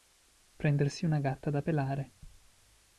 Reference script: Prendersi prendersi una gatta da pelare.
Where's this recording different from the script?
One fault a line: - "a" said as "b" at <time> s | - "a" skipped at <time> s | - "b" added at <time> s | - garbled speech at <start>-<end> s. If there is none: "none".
- "prendersi" skipped at 1.1 s